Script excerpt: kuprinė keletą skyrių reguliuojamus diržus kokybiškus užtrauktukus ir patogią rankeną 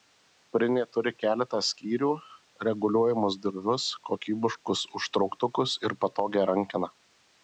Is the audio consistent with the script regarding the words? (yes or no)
no